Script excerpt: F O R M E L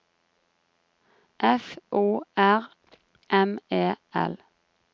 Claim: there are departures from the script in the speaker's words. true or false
false